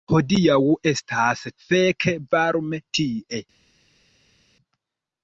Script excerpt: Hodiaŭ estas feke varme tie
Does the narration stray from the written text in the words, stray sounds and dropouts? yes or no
no